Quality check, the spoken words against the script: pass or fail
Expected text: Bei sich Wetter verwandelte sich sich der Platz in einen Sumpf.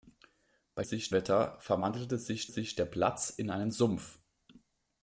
pass